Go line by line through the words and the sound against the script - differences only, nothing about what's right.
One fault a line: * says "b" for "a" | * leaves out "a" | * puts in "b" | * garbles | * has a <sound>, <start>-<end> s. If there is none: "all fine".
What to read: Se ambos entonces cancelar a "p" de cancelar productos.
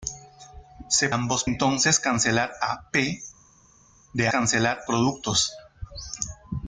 all fine